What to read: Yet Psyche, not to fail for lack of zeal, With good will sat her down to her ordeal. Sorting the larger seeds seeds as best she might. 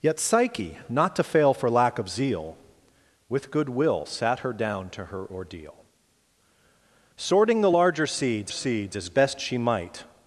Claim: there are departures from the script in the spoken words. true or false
false